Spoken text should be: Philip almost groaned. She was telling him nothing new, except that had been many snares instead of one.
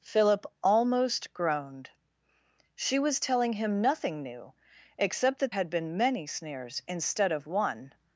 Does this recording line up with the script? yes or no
yes